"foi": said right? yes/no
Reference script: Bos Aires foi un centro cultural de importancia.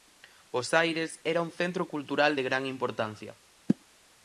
no